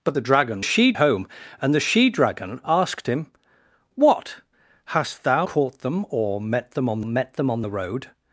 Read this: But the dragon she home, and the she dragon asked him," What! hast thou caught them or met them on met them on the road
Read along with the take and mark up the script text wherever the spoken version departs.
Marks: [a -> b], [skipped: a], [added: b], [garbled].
But the dragon she home, and the she dragon asked him," What! hast thou caught them or met them on met them on the road